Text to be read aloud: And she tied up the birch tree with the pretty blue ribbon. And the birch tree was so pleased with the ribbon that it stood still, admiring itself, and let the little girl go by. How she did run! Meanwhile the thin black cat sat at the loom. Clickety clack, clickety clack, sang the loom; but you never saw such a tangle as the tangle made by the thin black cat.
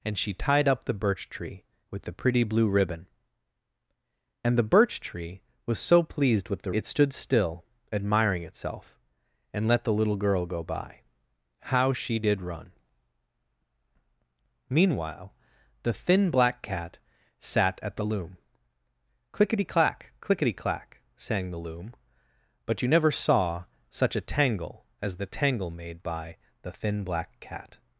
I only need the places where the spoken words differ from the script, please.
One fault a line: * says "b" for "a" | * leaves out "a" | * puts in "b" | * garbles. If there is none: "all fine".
* leaves out "ribbon that"